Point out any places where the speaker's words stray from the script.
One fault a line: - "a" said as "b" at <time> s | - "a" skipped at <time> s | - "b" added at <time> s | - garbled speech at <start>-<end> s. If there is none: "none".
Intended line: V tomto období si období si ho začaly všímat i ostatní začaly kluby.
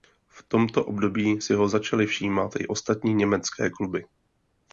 - "období si" skipped at 1.5 s
- "začaly" said as "německé" at 3.1 s